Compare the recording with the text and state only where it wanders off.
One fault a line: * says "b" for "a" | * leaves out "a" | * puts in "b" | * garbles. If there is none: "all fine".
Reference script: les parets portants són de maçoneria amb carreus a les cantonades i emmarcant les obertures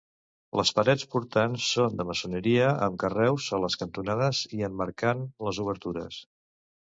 all fine